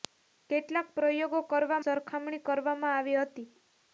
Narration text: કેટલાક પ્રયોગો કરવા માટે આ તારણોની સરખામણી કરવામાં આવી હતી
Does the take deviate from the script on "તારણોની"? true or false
true